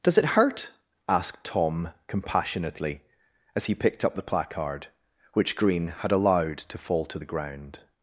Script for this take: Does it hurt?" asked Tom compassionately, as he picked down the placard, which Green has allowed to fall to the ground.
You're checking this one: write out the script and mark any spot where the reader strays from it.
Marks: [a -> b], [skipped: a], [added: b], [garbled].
Does it hurt?" asked Tom compassionately, as he picked [down -> up] the placard, which Green [has -> had] allowed to fall to the ground.